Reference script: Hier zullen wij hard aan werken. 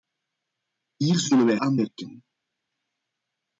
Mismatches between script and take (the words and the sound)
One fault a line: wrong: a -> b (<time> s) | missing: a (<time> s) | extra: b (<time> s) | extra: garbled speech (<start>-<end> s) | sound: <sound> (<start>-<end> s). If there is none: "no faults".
missing: hard (1.6 s)